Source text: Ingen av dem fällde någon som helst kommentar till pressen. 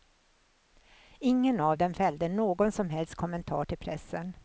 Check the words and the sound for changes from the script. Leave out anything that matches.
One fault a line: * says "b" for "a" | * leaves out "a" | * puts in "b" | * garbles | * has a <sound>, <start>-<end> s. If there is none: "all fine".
all fine